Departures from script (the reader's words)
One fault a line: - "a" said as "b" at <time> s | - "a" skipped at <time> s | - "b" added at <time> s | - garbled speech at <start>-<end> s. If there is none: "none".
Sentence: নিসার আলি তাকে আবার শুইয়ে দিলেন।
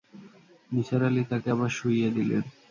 none